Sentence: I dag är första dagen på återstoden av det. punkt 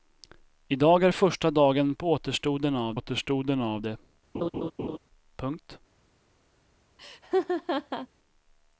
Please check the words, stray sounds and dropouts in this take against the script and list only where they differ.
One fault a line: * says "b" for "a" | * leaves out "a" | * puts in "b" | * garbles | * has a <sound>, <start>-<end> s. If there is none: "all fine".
* puts in "återstoden av"
* has a laugh, 4.3-5.0 s
* has a laugh, 7.0-8.1 s